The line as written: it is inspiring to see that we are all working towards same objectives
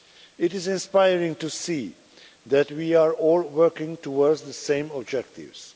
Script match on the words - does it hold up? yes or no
no